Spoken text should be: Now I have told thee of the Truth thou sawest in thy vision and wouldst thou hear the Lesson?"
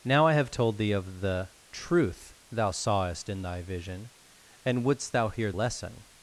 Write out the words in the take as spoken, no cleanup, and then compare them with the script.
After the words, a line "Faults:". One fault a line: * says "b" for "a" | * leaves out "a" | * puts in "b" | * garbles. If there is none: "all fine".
Now I have told thee of the Truth thou sawest in thy vision and wouldst thou hear Lesson?"
Faults:
* leaves out "the"